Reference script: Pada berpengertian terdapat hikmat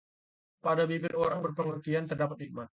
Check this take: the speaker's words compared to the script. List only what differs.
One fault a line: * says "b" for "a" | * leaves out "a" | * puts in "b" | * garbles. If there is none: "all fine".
* puts in "bibir orang"